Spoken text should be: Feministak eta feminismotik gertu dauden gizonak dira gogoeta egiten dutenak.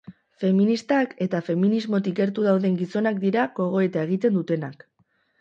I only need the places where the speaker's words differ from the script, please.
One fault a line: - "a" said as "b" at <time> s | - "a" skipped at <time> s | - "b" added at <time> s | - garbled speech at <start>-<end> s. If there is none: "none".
none